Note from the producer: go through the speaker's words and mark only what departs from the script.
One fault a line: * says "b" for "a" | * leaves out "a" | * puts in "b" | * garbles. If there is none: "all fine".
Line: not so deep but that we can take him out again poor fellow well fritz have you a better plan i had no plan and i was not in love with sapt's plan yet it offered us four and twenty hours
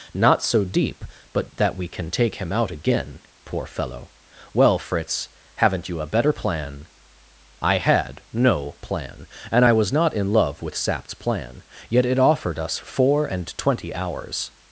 * says "haven't" for "have"